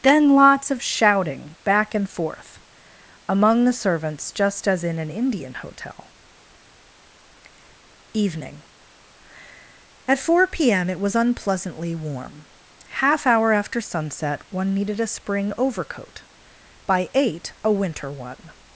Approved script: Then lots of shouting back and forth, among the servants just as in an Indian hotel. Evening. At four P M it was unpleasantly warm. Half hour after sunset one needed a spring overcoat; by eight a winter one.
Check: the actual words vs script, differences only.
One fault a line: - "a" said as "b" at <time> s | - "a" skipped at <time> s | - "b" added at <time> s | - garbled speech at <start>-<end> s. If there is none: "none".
none